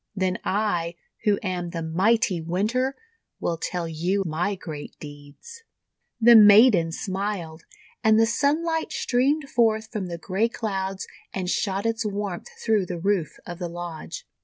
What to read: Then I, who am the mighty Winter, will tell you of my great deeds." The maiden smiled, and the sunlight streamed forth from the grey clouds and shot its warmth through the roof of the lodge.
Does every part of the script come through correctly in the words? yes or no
no